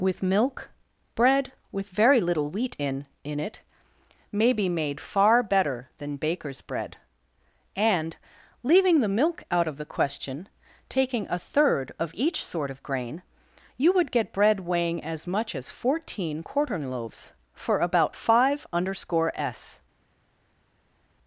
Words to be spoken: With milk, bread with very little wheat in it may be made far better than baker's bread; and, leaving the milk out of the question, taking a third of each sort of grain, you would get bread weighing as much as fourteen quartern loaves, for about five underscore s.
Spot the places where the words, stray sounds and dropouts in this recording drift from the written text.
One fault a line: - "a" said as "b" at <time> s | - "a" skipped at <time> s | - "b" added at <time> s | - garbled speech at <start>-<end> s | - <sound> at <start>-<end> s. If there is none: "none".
- "in" added at 3.2 s